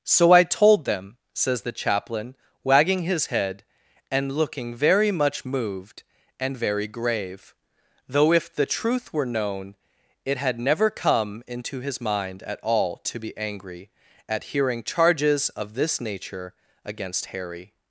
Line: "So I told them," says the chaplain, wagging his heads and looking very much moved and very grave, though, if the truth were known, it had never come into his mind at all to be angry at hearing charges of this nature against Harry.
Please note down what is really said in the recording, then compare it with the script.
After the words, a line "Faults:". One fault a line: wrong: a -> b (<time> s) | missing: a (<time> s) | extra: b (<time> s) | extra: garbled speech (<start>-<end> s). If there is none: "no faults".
"So I told them," says the chaplain, wagging his head and looking very much moved and very grave, though, if the truth were known, it had never come into his mind at all to be angry at hearing charges of this nature against Harry.
Faults:
wrong: heads -> head (3.3 s)